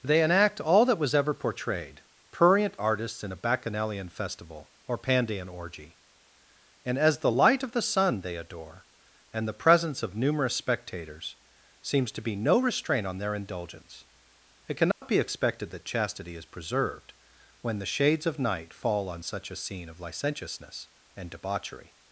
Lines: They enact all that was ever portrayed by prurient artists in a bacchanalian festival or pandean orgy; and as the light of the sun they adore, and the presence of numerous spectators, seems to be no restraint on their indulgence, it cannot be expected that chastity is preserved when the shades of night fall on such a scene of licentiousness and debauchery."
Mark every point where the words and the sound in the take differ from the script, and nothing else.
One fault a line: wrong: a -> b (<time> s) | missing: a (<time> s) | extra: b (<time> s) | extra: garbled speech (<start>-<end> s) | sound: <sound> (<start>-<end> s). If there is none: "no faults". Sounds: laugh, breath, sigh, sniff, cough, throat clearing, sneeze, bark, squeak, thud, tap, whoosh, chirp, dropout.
missing: by (2.0 s)
sound: dropout (14.9-15.0 s)